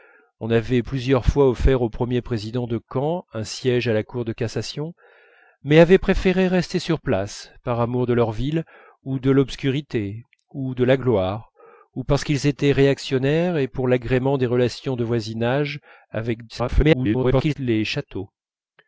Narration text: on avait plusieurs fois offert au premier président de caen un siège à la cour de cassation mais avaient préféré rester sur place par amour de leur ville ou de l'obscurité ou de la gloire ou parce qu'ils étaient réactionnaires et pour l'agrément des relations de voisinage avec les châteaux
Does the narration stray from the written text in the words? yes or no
yes